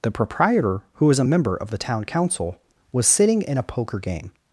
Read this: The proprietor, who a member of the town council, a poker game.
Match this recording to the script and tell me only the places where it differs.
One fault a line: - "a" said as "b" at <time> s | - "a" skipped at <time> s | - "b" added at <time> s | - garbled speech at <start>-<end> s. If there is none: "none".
- "was" added at 1.1 s
- "was sitting in" added at 2.9 s